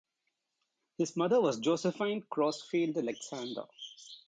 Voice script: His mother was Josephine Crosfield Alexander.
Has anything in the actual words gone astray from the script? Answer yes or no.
no